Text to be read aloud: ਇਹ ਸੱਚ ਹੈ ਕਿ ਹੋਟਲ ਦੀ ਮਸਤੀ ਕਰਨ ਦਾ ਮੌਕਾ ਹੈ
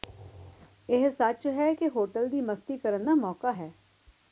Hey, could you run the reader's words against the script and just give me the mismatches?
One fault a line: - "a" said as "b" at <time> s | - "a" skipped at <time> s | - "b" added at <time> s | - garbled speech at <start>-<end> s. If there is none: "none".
none